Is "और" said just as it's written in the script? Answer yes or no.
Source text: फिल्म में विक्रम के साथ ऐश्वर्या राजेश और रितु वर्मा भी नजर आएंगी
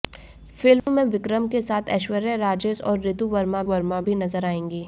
yes